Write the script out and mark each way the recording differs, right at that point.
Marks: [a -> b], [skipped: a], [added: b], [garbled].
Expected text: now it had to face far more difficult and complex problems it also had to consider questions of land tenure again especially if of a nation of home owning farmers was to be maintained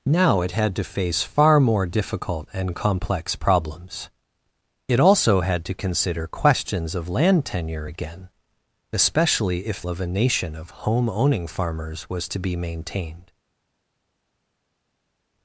now it had to face far more difficult and complex problems it also had to consider questions of land tenure again especially if of a nation of home owning farmers was to be maintained